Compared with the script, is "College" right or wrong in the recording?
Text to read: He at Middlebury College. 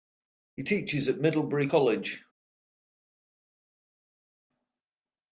right